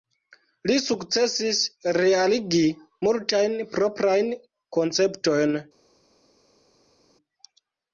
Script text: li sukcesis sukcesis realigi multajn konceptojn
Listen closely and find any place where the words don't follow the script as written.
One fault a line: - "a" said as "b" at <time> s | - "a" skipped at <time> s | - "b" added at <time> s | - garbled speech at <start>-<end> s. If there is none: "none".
- "sukcesis" skipped at 1.6 s
- "proprajn" added at 3.8 s